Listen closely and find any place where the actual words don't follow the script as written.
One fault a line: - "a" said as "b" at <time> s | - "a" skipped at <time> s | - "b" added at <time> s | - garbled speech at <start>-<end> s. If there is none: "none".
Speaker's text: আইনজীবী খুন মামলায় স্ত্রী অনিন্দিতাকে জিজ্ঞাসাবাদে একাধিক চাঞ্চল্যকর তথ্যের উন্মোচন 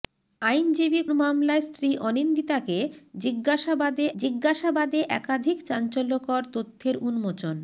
- "খুন" skipped at 1.0 s
- "জিজ্ঞাসাবাদে" added at 4.2 s